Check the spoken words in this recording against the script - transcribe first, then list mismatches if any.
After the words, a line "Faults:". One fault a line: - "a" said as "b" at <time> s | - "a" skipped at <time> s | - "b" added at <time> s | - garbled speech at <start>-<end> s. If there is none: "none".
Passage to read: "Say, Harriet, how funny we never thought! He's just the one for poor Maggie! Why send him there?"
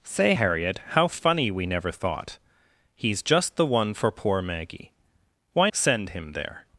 "Say, Harriet, how funny we never thought! He's just the one for poor Maggie! Why send him there?"
Faults:
none